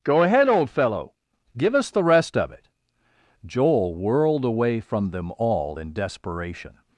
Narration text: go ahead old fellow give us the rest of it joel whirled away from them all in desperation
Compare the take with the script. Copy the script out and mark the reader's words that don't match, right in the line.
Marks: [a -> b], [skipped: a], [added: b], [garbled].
go ahead old fellow give us the rest of it joel whirled away from them all in desperation